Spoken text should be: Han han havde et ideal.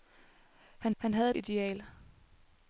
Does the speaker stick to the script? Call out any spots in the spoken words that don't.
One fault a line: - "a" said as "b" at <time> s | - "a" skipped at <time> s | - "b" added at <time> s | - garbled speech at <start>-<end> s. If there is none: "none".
none